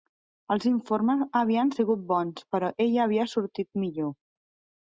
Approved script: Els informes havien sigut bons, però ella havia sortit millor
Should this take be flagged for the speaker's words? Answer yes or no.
no